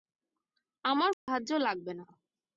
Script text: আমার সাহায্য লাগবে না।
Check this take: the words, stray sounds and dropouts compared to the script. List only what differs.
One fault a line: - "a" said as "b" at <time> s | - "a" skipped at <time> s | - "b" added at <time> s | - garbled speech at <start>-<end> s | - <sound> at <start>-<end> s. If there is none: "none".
- dropout at 1.1-1.3 s